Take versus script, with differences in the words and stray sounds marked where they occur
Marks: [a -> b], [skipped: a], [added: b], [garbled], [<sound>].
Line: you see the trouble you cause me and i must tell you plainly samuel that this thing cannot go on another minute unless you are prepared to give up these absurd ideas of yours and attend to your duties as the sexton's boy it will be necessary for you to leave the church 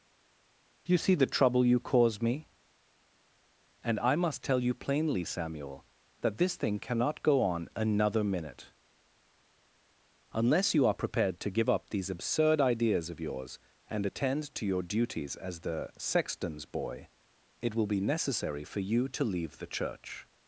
you see the trouble you cause me and i must tell you plainly samuel that this thing cannot go on another minute unless you are prepared to give up these absurd ideas of yours and attend to your duties as the sexton's boy it will be necessary for you to leave the church